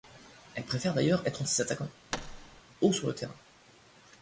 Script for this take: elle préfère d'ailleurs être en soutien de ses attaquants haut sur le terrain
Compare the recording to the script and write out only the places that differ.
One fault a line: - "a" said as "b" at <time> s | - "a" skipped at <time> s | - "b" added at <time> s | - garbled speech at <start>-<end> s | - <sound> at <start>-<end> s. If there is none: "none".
- "soutien" skipped at 1.4 s
- thud at 2.1-2.6 s